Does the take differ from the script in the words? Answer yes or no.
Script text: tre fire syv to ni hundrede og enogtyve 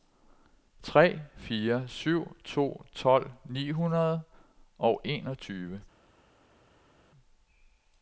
yes